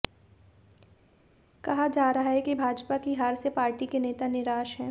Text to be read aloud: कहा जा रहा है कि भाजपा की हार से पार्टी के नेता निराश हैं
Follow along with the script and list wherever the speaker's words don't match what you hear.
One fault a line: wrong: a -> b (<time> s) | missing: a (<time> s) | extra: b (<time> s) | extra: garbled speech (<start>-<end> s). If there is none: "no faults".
no faults